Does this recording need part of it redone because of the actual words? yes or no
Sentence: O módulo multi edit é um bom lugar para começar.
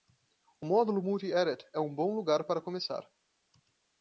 no